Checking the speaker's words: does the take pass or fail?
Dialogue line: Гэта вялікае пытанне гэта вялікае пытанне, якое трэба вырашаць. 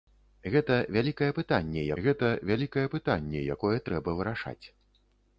pass